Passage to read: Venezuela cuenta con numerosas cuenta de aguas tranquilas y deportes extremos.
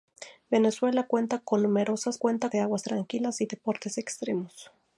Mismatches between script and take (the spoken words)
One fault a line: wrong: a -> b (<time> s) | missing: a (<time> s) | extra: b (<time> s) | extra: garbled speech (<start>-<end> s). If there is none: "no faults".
no faults